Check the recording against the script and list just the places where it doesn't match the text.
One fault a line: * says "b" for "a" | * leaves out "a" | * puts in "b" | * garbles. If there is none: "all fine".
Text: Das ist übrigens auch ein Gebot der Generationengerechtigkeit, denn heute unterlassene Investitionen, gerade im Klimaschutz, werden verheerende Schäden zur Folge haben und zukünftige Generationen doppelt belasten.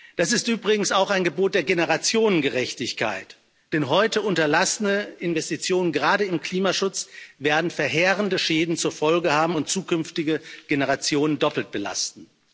all fine